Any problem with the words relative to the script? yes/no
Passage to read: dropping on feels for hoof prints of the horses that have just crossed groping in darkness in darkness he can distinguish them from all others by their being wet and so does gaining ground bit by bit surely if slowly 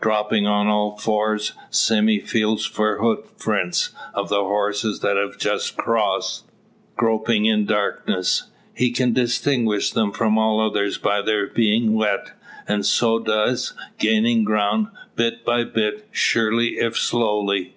yes